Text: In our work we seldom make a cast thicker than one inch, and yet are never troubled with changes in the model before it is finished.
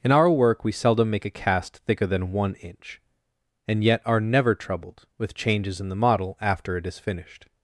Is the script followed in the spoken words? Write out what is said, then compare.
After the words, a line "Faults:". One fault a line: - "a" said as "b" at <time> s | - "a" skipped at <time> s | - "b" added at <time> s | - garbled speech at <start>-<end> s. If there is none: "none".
In our work we seldom make a cast thicker than one inch, and yet are never troubled with changes in the model after it is finished.
Faults:
- "before" said as "after" at 6.4 s